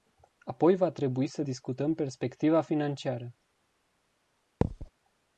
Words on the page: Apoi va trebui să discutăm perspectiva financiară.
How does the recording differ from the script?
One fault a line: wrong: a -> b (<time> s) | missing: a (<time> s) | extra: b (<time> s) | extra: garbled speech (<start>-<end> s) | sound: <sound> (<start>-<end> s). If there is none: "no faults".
sound: thud (4.6-4.9 s)